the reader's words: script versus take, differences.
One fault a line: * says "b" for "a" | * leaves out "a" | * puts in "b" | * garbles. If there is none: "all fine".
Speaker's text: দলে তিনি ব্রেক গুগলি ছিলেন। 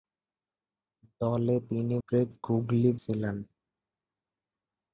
all fine